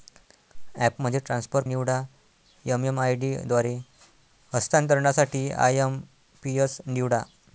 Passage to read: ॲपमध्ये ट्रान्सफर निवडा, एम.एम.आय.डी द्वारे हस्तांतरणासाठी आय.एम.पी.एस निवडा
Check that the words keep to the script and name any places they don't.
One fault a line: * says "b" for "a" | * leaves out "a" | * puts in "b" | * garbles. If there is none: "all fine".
all fine